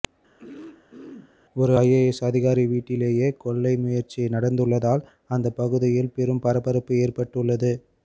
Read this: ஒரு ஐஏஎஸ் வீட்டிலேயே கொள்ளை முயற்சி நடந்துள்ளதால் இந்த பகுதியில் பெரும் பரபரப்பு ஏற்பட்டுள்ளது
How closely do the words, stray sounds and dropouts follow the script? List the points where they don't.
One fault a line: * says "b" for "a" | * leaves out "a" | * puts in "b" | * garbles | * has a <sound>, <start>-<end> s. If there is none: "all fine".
* has a throat clearing, 0.4-1.4 s
* puts in "அதிகாரி"
* says "அந்த" for "இந்த"